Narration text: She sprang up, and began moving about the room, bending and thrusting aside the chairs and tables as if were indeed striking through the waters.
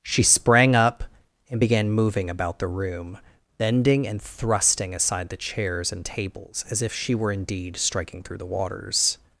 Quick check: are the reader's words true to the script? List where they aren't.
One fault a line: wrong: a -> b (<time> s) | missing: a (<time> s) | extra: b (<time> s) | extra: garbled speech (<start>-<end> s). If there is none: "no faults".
extra: she (6.9 s)